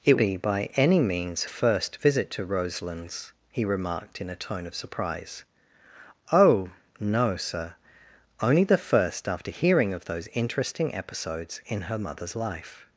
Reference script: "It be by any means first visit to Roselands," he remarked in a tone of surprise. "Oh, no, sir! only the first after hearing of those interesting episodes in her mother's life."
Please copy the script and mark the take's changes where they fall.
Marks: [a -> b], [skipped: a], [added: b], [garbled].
"It be by any means first visit to Roselands," he remarked in a tone of surprise. "Oh, no, sir! only the first after hearing of those interesting episodes in her mother's life."